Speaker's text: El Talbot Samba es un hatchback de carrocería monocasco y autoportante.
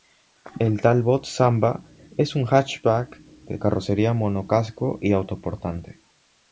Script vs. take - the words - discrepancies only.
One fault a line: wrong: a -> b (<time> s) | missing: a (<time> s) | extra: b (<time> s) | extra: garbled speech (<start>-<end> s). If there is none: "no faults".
no faults